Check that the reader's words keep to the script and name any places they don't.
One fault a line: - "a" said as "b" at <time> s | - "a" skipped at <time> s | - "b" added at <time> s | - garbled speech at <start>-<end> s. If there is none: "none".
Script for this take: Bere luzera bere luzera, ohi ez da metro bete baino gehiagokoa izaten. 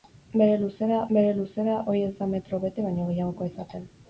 none